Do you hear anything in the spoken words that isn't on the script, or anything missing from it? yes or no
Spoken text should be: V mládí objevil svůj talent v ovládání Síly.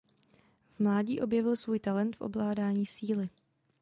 no